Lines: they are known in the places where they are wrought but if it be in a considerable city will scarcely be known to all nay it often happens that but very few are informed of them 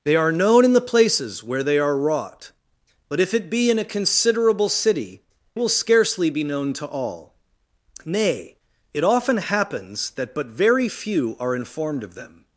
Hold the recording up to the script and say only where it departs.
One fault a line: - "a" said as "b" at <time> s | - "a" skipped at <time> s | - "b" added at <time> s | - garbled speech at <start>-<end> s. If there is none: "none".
none